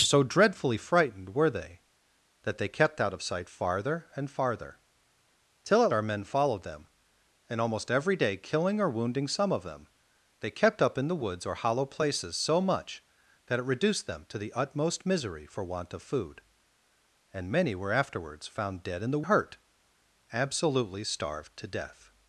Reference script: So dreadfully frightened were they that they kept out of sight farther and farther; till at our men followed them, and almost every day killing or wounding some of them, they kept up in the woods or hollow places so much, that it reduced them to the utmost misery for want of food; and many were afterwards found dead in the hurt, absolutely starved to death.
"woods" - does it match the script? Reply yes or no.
yes